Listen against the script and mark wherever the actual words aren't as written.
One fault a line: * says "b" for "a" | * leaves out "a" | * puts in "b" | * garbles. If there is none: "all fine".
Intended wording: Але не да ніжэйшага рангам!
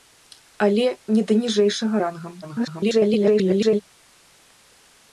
* garbles